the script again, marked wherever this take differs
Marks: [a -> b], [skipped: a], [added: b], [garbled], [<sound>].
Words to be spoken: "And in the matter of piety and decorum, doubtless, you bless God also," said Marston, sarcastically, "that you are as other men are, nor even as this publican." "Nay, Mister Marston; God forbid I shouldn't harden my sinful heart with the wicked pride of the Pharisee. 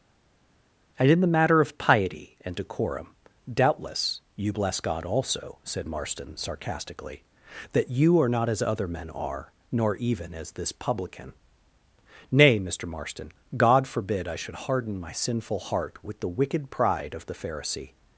"And in the matter of piety and decorum, doubtless, you bless God also," said Marston, sarcastically, "that you are [added: not] as other men are, nor even as this publican." "Nay, Mister Marston; God forbid I [shouldn't -> should] harden my sinful heart with the wicked pride of the Pharisee.